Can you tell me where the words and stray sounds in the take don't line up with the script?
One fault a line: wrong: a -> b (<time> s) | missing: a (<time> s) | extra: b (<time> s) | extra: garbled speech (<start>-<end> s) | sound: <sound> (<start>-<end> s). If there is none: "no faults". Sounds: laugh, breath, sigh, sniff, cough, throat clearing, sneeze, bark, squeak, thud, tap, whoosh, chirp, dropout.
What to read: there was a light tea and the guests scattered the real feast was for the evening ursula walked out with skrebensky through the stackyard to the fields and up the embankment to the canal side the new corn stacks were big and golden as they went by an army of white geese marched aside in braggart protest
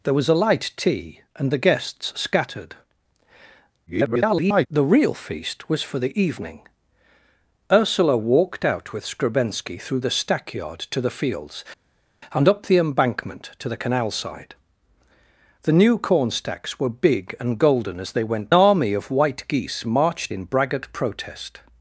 extra: garbled speech (3.9-4.7 s)
missing: by an (18.5 s)
missing: aside (20.3 s)